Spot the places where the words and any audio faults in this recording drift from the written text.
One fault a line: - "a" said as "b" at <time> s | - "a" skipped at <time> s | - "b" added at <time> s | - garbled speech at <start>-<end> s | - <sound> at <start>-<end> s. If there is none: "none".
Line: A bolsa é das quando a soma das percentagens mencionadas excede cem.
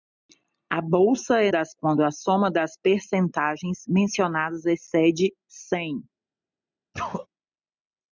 - sneeze at 6.9-7.3 s